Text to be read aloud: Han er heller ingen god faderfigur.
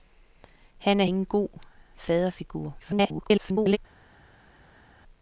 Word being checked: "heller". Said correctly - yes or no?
no